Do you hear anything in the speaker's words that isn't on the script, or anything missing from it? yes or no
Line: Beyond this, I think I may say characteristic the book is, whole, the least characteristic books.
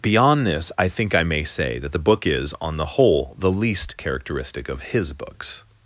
yes